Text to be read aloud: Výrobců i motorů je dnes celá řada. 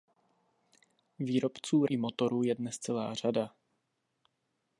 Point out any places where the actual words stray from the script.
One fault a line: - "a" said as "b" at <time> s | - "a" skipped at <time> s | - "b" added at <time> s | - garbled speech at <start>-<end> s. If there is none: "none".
none